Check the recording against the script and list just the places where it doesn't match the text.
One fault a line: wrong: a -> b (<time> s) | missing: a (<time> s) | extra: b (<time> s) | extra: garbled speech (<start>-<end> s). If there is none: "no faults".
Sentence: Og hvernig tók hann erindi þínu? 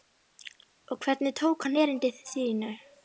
no faults